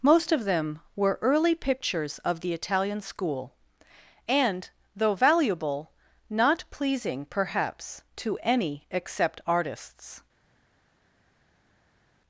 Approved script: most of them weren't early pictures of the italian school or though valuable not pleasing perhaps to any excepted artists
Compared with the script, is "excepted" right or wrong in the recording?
wrong